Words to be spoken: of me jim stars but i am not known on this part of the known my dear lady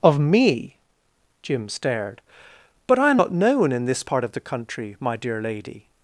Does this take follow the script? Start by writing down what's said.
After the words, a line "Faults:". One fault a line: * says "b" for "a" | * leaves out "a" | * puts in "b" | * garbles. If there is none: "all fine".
of me jim stared but i am not known in this part of the country my dear lady
Faults:
* says "stared" for "stars"
* says "in" for "on"
* says "country" for "known"